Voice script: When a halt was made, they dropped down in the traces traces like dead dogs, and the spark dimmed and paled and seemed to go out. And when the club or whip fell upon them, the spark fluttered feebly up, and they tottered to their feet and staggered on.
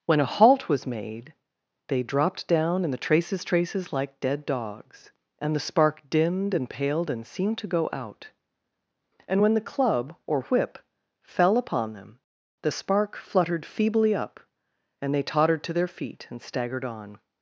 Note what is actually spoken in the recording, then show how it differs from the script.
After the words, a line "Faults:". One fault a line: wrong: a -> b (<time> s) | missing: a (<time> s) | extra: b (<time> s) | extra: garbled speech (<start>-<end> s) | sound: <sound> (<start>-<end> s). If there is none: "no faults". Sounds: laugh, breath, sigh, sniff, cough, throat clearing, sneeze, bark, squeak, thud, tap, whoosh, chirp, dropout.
When a halt was made, they dropped down in the traces traces like dead dogs, and the spark dimmed and paled and seemed to go out. And when the club or whip fell upon them, the spark fluttered feebly up, and they tottered to their feet and staggered on.
Faults:
no faults